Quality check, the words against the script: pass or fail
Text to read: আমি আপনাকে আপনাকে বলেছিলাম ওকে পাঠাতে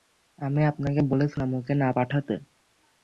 fail